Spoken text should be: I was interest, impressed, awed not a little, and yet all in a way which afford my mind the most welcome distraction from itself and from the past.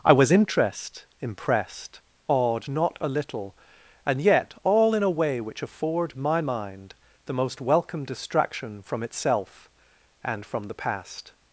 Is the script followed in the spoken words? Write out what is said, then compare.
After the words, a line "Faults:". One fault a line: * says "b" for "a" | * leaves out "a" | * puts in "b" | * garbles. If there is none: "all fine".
I was interest, impressed, awed not a little, and yet all in a way which afford my mind the most welcome distraction from itself and from the past.
Faults:
all fine